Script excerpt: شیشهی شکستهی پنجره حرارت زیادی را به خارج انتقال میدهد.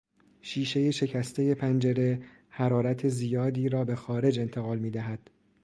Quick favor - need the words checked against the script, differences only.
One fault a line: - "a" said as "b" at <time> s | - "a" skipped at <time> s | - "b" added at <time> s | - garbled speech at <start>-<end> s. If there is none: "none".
none